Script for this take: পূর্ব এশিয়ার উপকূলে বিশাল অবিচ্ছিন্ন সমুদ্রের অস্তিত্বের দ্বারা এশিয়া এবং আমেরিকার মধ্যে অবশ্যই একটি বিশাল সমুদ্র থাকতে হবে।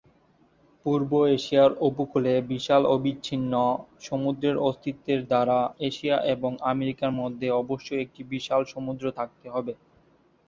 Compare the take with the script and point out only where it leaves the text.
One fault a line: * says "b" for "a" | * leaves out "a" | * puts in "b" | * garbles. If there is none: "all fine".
all fine